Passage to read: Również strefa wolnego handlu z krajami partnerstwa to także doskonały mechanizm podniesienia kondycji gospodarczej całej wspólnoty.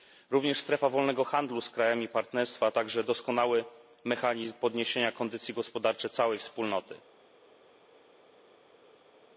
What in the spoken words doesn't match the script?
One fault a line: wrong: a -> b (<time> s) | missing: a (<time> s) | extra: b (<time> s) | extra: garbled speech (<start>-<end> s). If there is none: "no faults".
missing: to (2.7 s)